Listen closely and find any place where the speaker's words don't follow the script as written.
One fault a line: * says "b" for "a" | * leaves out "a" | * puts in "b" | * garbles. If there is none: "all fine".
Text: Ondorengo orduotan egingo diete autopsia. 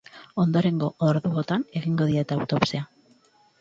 all fine